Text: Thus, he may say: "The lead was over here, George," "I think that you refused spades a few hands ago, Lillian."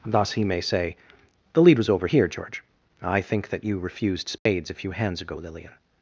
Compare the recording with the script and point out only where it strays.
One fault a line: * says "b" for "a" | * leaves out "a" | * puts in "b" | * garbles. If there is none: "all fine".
all fine